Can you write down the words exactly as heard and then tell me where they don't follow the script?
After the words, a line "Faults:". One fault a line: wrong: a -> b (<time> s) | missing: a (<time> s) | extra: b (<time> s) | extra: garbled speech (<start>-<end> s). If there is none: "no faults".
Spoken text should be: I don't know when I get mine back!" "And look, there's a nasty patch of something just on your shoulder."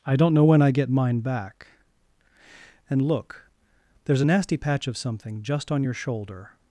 I don't know when I get mine back!" "And look, there's a nasty patch of something just on your shoulder."
Faults:
no faults